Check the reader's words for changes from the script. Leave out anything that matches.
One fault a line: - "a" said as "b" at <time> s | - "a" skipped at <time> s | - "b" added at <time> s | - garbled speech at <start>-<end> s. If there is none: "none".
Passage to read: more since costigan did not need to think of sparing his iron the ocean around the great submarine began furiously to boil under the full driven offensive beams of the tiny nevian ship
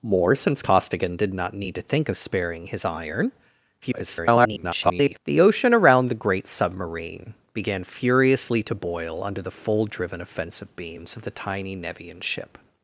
- garbled speech at 3.8-5.2 s